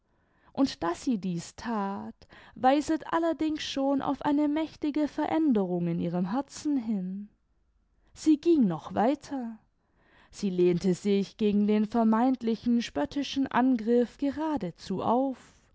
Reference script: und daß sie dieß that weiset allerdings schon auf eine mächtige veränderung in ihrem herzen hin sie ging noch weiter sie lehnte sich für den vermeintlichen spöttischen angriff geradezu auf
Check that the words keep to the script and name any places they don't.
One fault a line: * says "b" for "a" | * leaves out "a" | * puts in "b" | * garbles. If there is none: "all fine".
* says "gegen" for "für"